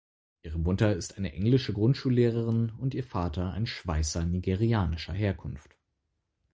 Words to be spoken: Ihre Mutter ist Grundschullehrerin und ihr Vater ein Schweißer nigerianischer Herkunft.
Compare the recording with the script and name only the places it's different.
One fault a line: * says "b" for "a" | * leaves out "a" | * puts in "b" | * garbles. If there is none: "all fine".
* puts in "eine englische"